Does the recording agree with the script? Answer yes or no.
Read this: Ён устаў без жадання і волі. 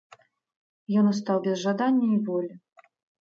yes